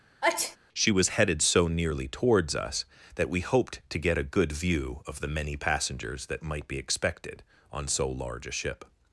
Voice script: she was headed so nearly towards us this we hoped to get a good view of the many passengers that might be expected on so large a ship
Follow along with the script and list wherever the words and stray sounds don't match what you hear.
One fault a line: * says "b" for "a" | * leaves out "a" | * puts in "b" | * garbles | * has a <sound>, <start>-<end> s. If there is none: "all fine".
* has a sneeze, 0.2-0.6 s
* says "that" for "this"